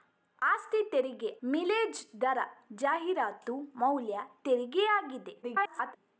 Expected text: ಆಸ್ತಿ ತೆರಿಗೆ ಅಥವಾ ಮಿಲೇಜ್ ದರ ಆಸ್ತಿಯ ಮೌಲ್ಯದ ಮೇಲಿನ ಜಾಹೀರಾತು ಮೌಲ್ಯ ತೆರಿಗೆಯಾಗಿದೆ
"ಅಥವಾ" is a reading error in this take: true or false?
true